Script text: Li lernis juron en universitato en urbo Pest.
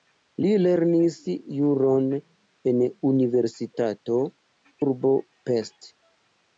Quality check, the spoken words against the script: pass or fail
fail